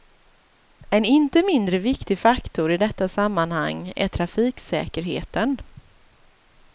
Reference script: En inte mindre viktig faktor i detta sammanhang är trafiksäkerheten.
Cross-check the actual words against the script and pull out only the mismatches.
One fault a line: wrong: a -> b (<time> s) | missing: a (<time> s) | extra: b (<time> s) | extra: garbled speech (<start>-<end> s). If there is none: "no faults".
no faults